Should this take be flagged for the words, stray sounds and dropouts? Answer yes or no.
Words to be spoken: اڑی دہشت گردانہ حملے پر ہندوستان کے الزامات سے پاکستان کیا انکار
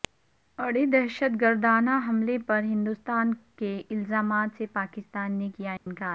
yes